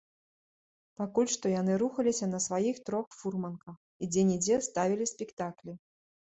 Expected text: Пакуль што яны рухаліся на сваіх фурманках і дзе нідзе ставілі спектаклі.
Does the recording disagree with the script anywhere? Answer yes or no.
yes